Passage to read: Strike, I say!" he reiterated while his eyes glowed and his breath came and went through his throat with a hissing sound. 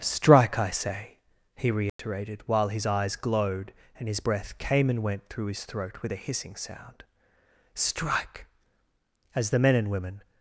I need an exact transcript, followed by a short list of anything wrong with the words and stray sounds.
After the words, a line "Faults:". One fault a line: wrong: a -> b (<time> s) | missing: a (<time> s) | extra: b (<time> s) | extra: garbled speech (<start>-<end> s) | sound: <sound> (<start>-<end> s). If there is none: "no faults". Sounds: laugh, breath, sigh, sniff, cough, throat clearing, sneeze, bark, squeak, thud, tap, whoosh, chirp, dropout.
Strike, I say!" he reiterated while his eyes glowed and his breath came and went through his throat with a hissing sound. "Strike! as the men and women
Faults:
sound: dropout (1.9-2.0 s)
extra: Strike as the men and women (7.7 s)